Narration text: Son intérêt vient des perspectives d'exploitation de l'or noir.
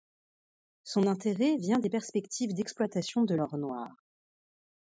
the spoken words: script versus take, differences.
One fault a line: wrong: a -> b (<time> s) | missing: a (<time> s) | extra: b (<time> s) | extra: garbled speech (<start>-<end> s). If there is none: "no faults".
no faults